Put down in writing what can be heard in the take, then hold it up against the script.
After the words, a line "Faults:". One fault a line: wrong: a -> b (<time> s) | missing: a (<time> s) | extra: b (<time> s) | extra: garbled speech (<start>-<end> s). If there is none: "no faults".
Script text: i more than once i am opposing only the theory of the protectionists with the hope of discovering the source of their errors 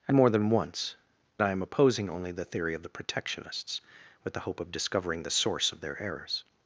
i more than once i am opposing only the theory of the protectionists with the hope of discovering the source of their errors
Faults:
no faults